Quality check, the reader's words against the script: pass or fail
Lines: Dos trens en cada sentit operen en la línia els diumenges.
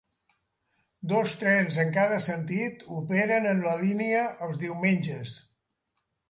pass